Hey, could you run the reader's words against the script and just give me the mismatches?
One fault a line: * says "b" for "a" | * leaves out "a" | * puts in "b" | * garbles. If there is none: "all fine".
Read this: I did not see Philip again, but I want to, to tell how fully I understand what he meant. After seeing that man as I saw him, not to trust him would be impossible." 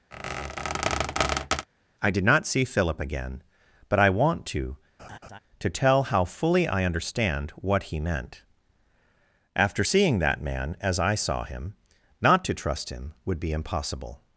all fine